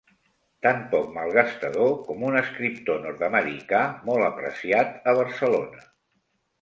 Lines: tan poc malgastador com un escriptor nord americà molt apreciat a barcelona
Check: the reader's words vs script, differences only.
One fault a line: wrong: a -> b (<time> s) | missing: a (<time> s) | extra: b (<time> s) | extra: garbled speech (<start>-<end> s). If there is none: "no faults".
no faults